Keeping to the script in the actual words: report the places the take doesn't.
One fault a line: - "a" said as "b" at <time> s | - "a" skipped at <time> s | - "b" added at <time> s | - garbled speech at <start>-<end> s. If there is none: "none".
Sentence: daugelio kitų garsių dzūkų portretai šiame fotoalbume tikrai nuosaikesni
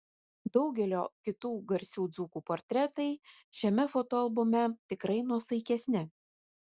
none